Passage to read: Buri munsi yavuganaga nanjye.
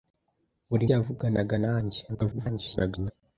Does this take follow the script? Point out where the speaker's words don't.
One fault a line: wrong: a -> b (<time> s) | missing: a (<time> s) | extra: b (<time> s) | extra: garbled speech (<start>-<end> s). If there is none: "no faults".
missing: munsi (0.8 s)
extra: garbled speech (2.1-3.1 s)